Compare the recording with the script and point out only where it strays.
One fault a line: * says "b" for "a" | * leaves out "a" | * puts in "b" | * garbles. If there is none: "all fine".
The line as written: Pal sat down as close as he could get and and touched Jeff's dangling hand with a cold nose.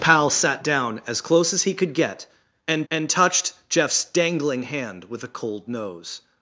all fine